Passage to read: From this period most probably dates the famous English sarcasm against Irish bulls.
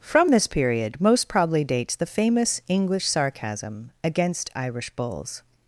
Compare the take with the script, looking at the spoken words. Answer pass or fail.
pass